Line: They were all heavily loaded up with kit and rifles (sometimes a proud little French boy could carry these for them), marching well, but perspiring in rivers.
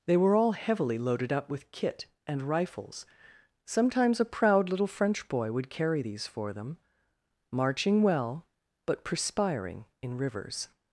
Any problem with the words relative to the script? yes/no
yes